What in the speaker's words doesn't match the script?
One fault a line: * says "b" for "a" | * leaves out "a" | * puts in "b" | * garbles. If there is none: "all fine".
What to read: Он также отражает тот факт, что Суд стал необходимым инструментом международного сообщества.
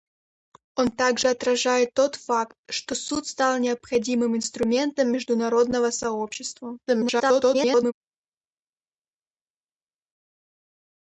* garbles